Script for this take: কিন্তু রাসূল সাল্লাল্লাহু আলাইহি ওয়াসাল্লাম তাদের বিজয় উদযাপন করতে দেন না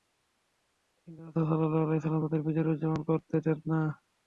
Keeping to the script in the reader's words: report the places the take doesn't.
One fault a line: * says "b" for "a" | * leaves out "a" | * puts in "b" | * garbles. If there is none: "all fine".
all fine